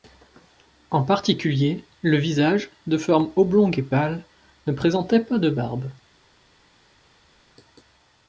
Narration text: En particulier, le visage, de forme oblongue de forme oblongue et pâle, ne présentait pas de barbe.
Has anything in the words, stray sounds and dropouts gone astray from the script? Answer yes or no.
yes